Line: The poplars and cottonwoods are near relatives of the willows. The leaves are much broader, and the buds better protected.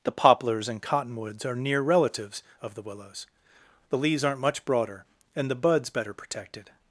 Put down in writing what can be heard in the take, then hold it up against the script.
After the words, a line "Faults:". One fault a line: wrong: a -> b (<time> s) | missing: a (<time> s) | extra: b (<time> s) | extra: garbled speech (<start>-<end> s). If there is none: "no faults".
The poplars and cottonwoods are near relatives of the willows. The leaves aren't much broader, and the buds better protected.
Faults:
wrong: are -> aren't (4.2 s)